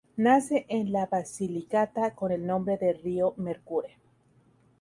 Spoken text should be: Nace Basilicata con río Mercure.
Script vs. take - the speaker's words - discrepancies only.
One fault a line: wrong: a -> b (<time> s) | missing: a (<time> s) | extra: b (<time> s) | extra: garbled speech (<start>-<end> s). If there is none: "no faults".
extra: en la (0.7 s)
extra: el nombre de (2.3 s)